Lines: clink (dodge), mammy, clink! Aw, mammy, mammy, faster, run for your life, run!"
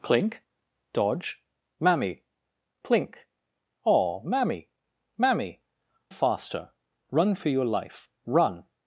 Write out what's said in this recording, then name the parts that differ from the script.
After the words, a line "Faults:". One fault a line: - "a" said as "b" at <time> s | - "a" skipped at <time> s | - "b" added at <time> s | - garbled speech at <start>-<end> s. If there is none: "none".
clink (dodge), mammy, clink! Aw, mammy, mammy, faster, run for your life, run!"
Faults:
none